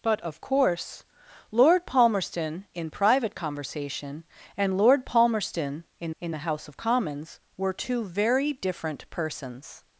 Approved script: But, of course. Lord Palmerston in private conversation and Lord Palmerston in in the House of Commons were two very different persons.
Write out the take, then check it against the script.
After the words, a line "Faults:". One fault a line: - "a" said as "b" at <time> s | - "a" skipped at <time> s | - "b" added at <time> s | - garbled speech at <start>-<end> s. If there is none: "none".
But, of course. Lord Palmerston in private conversation and Lord Palmerston in in the House of Commons were two very different persons.
Faults:
none